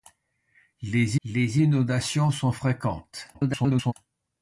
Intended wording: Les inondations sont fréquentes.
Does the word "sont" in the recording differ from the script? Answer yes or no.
no